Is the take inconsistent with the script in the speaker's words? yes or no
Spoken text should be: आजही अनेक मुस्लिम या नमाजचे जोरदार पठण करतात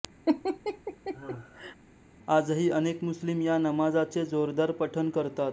no